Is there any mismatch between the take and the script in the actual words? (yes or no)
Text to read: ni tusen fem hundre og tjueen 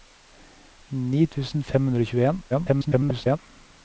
yes